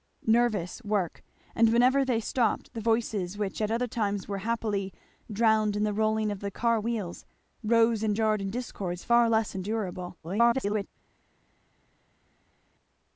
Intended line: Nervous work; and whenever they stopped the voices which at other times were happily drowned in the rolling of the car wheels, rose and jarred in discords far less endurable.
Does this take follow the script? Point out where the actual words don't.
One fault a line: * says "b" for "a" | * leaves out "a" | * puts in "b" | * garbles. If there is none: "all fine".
* garbles